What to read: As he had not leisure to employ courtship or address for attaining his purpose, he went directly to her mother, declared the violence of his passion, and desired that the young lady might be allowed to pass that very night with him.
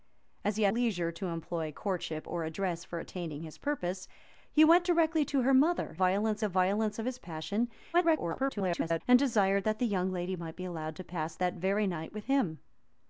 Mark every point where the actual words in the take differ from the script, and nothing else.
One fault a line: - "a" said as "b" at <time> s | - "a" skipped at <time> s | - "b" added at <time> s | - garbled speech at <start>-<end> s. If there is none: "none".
- "not" skipped at 0.7 s
- "declared" said as "violence" at 5.9 s
- garbled speech at 7.9-9.0 s